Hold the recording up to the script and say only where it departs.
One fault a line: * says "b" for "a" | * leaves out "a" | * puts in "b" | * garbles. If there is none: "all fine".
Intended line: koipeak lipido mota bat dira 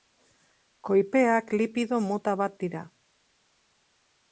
all fine